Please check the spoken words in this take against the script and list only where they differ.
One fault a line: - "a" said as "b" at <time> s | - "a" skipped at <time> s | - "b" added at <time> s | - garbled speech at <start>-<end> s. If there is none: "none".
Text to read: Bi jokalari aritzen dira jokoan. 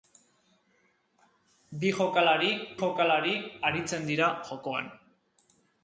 - "jokalari" added at 2.8 s